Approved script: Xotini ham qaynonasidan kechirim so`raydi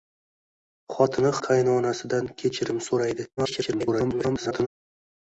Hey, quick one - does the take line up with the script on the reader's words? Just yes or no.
no